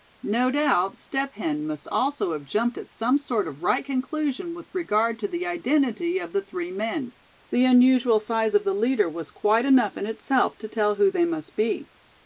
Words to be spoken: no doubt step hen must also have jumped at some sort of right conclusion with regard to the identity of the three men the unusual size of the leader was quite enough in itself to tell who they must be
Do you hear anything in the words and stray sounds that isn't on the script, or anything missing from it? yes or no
no